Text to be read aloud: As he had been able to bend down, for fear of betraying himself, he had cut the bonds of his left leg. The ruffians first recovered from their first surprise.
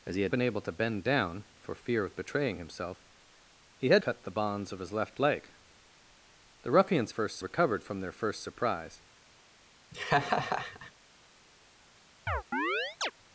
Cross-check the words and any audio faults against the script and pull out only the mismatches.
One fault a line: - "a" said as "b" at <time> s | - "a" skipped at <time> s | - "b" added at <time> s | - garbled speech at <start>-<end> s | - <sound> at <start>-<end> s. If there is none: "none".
- laugh at 9.9-10.9 s
- chirp at 12.3-13.1 s